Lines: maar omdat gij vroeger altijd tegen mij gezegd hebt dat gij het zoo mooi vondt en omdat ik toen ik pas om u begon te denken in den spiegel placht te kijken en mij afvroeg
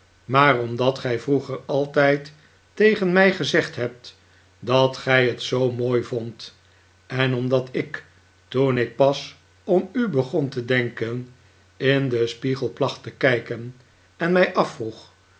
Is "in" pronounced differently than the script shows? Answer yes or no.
no